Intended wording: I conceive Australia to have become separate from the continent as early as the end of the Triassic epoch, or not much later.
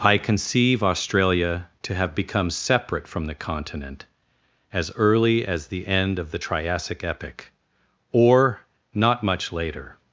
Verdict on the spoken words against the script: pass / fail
pass